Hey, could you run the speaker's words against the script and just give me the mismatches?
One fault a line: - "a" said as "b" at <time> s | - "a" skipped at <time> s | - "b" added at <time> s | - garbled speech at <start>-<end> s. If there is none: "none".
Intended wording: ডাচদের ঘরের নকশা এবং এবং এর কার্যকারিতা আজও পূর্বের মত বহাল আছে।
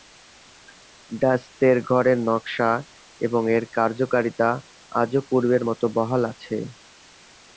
- "এবং" skipped at 3.4 s